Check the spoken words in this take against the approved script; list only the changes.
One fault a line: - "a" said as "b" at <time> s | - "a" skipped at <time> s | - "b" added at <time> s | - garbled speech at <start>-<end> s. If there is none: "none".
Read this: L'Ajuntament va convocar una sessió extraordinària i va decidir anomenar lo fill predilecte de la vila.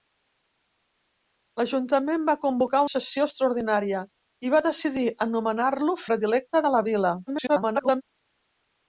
- "una" skipped at 2.8 s
- "fill" skipped at 6.0 s
- garbled speech at 7.3-8.0 s